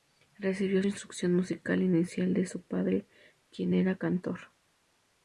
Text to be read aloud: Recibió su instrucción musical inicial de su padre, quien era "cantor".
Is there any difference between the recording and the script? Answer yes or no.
yes